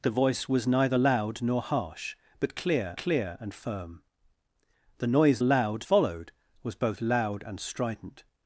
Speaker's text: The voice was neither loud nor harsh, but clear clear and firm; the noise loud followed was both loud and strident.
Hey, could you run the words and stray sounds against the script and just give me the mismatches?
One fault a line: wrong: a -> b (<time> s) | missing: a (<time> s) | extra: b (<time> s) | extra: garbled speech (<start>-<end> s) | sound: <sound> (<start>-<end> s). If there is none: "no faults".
no faults